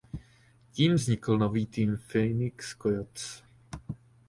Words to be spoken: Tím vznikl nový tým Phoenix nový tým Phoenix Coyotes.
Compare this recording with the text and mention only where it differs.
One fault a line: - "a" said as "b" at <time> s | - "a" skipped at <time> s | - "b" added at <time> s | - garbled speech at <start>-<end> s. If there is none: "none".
- "nový tým Phoenix" skipped at 2.7 s